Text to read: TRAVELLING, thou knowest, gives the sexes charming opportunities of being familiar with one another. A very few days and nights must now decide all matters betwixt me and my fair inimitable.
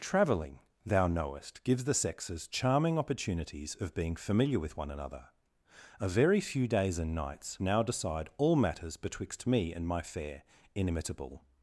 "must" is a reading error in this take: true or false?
true